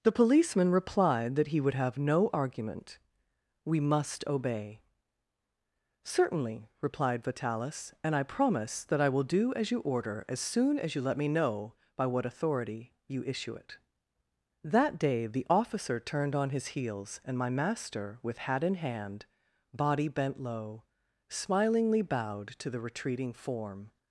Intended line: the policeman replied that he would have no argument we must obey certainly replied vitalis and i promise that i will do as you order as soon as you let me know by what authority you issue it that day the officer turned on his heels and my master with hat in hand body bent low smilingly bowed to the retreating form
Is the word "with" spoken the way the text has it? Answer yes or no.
yes